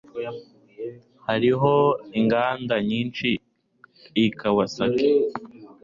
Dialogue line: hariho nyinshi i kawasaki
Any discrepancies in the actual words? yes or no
yes